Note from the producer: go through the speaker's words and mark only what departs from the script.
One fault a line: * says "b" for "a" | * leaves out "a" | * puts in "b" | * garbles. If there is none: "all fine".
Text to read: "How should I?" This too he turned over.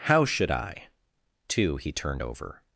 * leaves out "This"